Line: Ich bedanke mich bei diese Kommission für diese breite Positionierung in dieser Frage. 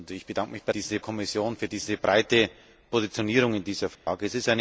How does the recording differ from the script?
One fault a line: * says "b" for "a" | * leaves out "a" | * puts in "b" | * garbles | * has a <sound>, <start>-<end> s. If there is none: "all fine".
* has a dropout, 4.0-4.1 s